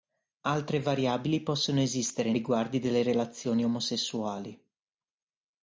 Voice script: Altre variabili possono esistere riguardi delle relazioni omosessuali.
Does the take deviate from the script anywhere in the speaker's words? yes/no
no